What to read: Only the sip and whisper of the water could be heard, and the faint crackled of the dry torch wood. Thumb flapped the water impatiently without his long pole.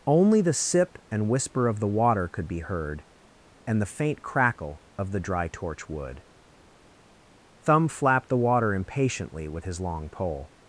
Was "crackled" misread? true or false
true